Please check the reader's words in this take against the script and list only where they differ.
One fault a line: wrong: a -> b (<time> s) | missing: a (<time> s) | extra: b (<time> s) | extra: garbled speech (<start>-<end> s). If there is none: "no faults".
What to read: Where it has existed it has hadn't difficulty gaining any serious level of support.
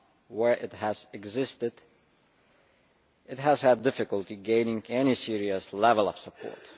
wrong: hadn't -> had (3.6 s)